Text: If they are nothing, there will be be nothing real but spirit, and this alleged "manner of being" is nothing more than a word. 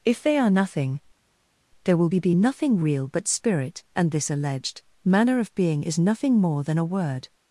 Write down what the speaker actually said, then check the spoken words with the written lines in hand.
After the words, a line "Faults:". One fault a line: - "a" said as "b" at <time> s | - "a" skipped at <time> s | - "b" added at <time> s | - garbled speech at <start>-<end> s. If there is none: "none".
If they are nothing, there will be be nothing real but spirit, and this alleged "manner of being" is nothing more than a word.
Faults:
none